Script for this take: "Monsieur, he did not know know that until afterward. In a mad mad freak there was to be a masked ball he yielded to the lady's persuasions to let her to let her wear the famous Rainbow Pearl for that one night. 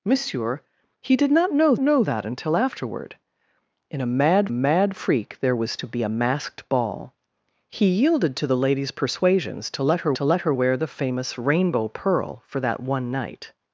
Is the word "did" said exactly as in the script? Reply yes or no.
yes